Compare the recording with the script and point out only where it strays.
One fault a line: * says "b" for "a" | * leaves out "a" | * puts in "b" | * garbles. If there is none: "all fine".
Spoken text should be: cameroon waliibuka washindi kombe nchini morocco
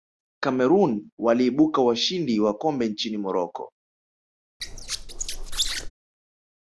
* puts in "wa"